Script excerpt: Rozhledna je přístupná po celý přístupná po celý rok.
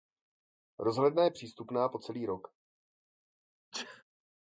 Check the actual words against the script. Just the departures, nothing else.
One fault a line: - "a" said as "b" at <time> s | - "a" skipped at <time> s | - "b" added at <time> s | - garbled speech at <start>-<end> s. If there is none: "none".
- "přístupná po celý" skipped at 2.3 s